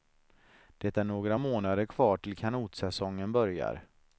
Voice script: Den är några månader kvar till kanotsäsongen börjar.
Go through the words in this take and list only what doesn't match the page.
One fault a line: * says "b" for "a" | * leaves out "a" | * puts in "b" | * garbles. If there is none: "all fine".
* says "Det" for "Den"